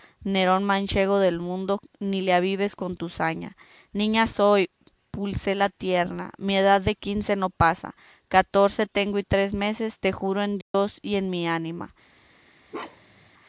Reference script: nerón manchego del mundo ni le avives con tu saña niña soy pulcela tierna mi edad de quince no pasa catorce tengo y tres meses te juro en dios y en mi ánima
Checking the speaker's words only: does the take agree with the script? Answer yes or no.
yes